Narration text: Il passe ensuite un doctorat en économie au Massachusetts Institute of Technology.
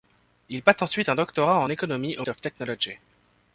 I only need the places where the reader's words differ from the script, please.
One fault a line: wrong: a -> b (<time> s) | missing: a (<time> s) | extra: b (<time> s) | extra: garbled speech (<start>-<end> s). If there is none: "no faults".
missing: Massachusetts Institute (2.2 s)